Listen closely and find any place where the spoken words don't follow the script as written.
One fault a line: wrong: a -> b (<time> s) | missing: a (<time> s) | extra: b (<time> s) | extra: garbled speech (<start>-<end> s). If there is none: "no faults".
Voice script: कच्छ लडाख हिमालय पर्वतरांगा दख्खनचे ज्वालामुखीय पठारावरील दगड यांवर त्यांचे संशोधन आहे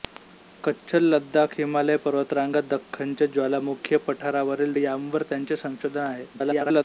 missing: दगड (4.7 s)
extra: garbled speech (6.3-6.8 s)